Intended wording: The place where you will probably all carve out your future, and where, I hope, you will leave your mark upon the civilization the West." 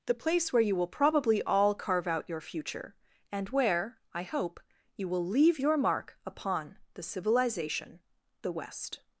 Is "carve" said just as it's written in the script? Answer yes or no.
yes